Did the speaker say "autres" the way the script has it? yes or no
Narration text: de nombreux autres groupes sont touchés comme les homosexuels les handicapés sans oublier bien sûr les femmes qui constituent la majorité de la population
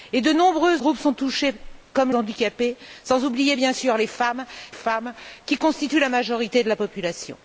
no